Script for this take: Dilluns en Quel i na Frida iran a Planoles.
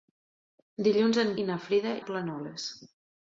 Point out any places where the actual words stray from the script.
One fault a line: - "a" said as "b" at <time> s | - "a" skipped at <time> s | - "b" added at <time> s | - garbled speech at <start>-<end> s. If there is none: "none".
- "Quel" skipped at 1.3 s
- "iran" skipped at 1.9 s